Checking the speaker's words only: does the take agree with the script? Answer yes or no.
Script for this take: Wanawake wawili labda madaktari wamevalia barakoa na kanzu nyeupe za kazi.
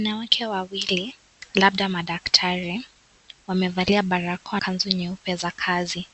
no